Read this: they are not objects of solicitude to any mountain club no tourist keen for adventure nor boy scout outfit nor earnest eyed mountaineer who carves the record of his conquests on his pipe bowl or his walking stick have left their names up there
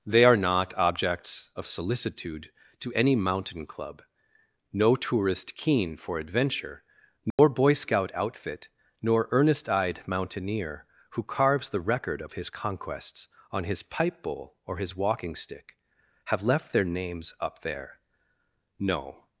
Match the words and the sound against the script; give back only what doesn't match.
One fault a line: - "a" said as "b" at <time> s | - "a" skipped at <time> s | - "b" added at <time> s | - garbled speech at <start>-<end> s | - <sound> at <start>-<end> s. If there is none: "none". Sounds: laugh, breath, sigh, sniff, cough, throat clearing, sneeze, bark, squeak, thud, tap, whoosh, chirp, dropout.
- dropout at 7.3-7.4 s
- "no" added at 18.8 s